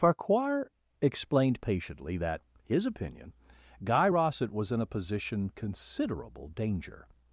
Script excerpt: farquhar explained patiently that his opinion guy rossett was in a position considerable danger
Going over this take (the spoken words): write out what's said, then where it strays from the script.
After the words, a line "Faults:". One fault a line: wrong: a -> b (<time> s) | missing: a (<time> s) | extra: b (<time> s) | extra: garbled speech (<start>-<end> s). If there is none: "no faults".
farquhar explained patiently that his opinion guy rossett was in a position considerable danger
Faults:
no faults